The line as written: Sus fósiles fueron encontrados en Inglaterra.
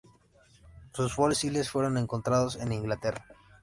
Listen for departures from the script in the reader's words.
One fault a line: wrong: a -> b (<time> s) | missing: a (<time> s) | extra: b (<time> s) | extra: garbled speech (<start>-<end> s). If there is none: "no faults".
no faults